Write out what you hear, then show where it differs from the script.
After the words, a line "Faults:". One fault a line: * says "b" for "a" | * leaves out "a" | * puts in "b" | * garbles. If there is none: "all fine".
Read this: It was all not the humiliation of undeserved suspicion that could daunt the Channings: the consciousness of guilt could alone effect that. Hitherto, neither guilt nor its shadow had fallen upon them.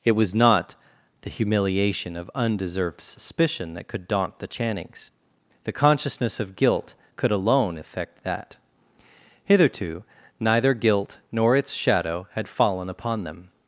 It was not the humiliation of undeserved suspicion that could daunt the Channings: the consciousness of guilt could alone effect that. Hitherto, neither guilt nor its shadow had fallen upon them.
Faults:
* leaves out "all"